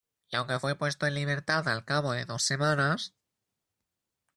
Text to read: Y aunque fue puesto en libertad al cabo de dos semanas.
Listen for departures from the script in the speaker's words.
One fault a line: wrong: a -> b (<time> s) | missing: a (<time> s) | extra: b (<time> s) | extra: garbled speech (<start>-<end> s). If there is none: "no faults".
no faults